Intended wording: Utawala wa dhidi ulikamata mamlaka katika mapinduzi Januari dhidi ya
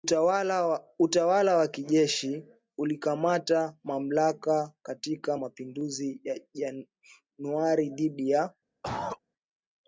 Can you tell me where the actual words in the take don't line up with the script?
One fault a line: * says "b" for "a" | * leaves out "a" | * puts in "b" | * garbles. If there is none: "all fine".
* says "kijeshi" for "dhidi"
* puts in "ya"